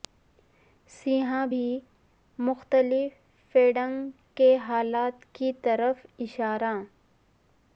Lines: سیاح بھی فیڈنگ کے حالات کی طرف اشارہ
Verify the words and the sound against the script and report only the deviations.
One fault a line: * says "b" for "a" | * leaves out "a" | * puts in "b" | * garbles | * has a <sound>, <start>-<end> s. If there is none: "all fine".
* puts in "مختلف"